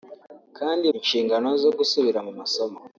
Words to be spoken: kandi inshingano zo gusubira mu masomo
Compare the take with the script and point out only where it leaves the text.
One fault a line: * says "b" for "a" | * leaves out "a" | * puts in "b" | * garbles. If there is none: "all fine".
all fine